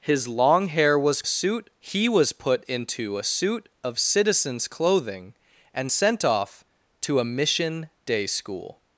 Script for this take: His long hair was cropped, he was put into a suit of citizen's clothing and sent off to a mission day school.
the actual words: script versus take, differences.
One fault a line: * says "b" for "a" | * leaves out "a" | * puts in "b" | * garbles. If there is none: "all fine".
* says "suit" for "cropped"